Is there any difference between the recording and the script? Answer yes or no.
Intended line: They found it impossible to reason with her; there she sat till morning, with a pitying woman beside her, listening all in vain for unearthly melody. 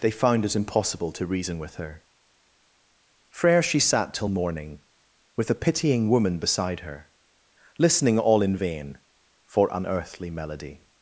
yes